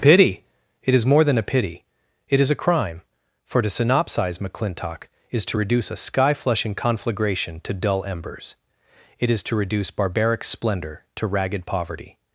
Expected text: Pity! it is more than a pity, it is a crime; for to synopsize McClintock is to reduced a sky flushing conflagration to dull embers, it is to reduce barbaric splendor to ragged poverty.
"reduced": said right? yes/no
no